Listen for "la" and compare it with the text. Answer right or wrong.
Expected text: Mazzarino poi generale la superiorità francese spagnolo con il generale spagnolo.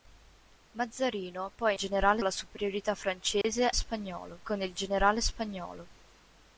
right